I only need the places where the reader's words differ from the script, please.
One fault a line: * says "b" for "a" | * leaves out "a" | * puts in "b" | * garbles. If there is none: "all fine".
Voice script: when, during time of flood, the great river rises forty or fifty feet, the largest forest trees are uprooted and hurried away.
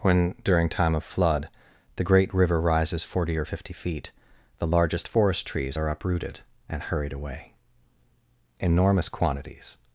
* puts in "Enormous quantities"